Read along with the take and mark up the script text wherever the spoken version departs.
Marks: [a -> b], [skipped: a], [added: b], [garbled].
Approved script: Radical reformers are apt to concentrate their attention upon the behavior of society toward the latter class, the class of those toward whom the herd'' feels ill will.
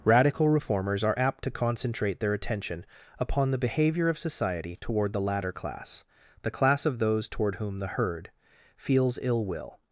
Radical reformers are apt to concentrate their attention upon the behavior of society toward the latter class, the class of those toward whom the herd'' feels ill will.